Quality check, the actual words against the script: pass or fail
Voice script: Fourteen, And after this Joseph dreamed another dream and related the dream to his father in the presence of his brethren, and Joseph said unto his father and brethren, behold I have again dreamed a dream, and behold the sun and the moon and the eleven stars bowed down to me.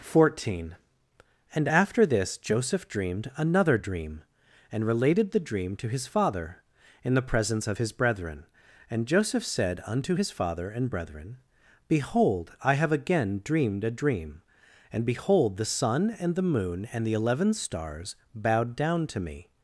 pass